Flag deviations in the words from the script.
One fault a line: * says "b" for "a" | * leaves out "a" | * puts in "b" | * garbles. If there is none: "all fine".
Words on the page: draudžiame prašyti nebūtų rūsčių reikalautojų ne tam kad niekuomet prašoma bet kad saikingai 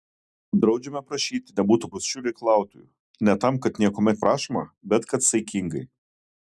all fine